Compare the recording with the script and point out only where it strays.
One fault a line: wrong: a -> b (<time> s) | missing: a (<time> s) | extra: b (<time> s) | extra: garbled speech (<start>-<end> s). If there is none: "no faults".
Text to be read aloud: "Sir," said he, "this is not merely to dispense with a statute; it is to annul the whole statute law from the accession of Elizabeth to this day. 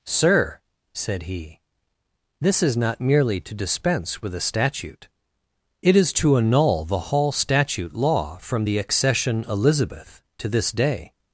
wrong: whole -> hall (7.0 s)
missing: of (9.4 s)